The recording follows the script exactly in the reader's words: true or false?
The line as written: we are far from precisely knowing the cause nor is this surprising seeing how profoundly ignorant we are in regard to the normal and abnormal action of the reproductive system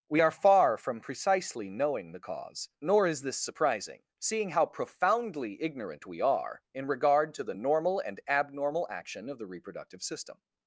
true